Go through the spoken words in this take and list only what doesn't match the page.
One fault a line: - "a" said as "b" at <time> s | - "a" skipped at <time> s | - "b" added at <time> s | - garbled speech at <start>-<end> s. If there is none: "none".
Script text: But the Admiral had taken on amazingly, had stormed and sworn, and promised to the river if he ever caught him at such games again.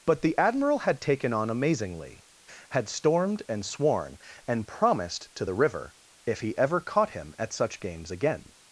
none